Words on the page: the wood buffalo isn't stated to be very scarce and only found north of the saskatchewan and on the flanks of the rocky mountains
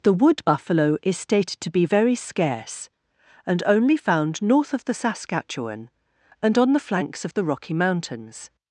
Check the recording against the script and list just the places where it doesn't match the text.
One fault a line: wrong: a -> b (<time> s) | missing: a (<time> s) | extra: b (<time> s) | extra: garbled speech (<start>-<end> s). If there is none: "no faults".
wrong: isn't -> is (1.0 s)